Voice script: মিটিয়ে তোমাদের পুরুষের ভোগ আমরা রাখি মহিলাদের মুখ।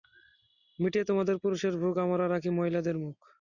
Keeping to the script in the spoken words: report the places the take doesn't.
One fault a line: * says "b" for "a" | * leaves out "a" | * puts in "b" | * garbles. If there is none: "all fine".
all fine